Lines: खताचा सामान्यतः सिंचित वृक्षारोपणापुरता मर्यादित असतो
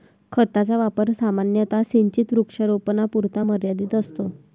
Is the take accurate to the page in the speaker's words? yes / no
no